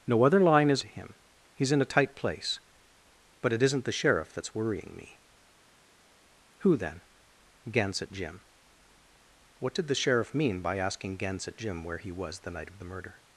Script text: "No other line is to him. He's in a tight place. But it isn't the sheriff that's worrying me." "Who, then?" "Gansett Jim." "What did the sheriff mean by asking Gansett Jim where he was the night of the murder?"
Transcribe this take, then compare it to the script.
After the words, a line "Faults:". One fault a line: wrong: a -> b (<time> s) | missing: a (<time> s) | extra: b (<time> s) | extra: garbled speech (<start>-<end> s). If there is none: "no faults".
"No other line is to him. He's in a tight place. But it isn't the sheriff that's worrying me." "Who, then?" "Gansett Jim." "What did the sheriff mean by asking Gansett Jim where he was the night of the murder?"
Faults:
no faults